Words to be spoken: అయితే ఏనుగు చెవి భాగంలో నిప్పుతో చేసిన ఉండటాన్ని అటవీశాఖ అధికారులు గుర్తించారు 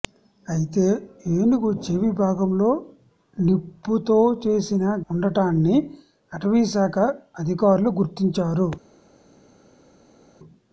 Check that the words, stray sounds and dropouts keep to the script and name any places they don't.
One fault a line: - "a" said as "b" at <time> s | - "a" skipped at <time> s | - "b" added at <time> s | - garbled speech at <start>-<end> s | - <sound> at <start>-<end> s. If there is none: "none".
none